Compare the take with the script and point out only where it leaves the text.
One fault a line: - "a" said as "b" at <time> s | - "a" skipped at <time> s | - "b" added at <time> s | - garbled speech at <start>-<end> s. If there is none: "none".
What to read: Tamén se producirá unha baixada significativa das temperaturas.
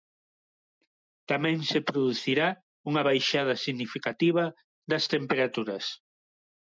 none